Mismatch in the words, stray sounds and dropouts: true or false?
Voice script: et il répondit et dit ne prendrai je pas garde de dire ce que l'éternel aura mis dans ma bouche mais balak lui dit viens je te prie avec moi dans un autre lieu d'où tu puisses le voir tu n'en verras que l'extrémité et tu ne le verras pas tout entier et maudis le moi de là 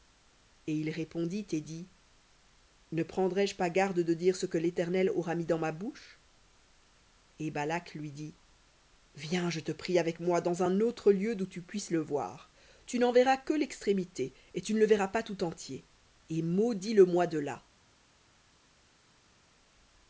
true